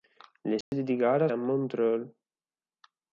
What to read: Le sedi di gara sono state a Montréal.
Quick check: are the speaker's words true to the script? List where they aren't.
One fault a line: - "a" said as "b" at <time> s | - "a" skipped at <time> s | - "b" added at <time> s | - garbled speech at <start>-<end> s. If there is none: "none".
- "sono state" skipped at 1.3 s